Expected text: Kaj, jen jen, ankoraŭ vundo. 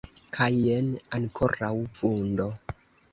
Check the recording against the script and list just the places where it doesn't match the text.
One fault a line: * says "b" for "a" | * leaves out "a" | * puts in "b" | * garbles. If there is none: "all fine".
* leaves out "jen"